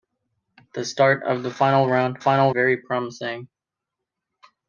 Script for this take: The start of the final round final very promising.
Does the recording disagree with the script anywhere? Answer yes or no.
no